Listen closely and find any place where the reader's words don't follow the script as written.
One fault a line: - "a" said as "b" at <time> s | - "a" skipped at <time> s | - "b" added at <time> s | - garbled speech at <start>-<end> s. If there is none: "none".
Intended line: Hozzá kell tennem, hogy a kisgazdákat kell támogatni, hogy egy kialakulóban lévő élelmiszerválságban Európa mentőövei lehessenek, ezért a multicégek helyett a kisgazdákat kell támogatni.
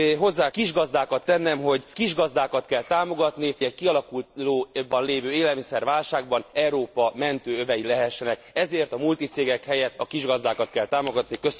- "kell" said as "kisgazdákat" at 0.5 s
- "a" skipped at 1.8 s
- "hogy" skipped at 3.5 s